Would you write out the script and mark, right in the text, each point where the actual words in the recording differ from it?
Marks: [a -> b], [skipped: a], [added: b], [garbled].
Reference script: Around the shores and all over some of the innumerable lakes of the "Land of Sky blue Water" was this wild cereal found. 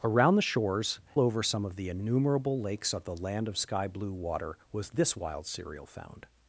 Around the shores [skipped: and all] over some of the innumerable lakes of the "Land of Sky blue Water" was this wild cereal found.